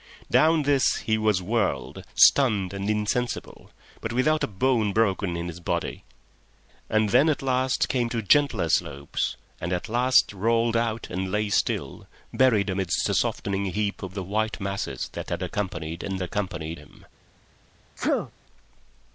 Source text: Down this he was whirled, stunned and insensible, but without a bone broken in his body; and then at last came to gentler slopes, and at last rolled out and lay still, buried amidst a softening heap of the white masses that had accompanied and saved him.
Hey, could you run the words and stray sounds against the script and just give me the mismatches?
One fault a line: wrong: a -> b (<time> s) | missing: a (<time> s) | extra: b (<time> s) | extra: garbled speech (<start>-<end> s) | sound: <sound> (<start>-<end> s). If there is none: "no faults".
wrong: saved -> accompanied (16.2 s)
sound: sneeze (18.0-18.3 s)